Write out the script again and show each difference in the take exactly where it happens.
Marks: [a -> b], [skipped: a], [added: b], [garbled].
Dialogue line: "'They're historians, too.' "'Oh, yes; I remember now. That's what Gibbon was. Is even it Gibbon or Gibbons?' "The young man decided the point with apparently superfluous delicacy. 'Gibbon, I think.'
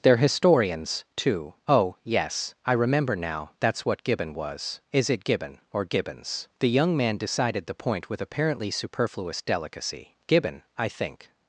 "'They're historians, too.' "'Oh, yes; I remember now. That's what Gibbon was. Is [skipped: even] it Gibbon or Gibbons?' "The young man decided the point with apparently superfluous delicacy. 'Gibbon, I think.'